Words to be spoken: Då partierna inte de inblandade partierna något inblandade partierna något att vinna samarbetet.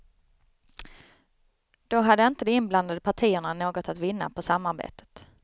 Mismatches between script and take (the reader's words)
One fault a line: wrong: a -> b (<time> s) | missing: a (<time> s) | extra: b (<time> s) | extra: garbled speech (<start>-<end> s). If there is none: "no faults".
wrong: partierna -> hade (2.0 s)
missing: inblandade partierna något (3.9 s)
extra: på (4.3 s)